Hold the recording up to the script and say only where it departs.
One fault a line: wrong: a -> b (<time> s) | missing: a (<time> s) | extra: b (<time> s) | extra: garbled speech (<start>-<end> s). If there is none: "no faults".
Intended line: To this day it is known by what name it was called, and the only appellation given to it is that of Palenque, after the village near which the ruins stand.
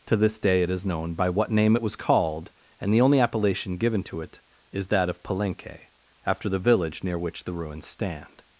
no faults